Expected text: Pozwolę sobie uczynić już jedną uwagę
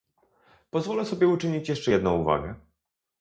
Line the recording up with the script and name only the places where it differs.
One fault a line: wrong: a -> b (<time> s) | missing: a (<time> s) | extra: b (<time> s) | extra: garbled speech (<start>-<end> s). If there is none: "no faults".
wrong: już -> jeszcze (1.7 s)